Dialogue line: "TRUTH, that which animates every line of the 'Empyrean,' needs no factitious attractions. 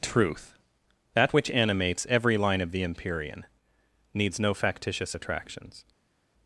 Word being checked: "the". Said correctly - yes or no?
yes